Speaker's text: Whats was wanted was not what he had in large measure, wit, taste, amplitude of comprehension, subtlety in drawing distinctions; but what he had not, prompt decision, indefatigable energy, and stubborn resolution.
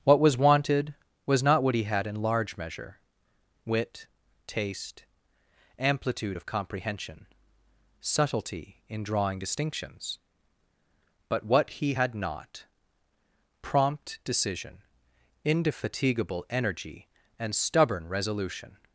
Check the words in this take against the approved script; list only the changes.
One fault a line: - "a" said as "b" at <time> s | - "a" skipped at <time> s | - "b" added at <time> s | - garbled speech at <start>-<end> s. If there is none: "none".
- "Whats" said as "What" at 0.0 s